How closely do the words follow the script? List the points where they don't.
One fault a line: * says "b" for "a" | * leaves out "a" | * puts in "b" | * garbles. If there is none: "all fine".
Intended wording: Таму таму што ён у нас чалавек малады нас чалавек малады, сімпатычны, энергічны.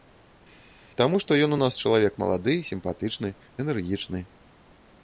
* leaves out "таму"
* leaves out "нас чалавек малады"